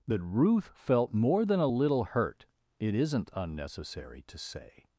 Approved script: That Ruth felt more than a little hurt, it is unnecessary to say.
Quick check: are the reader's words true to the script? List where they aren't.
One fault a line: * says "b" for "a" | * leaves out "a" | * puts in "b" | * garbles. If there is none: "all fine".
* says "isn't" for "is"